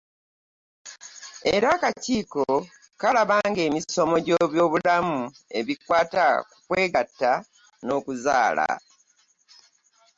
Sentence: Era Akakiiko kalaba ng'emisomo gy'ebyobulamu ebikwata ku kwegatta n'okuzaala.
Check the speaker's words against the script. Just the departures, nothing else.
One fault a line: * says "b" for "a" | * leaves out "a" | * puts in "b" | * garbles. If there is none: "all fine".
all fine